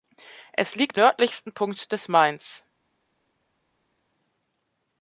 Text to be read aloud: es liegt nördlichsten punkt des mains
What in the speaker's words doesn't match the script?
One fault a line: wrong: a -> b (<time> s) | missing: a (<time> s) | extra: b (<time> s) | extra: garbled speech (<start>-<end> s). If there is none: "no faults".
no faults